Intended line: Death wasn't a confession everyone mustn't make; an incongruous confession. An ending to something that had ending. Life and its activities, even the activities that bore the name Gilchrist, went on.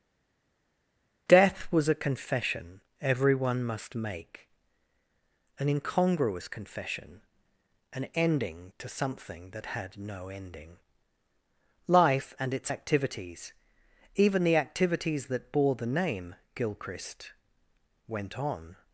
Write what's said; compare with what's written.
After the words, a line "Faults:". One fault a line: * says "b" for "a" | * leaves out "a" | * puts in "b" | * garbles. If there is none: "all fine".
Death was a confession everyone must make; an incongruous confession. An ending to something that had no ending. Life and its activities, even the activities that bore the name Gilchrist, went on.
Faults:
* says "was" for "wasn't"
* says "must" for "mustn't"
* puts in "no"